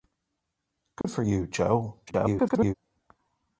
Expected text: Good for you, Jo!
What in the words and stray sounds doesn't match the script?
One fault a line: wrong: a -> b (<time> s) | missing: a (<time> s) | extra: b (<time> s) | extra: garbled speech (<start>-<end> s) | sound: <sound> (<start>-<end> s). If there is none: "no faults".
sound: dropout (1.0-1.0 s)
extra: garbled speech (2.1-2.7 s)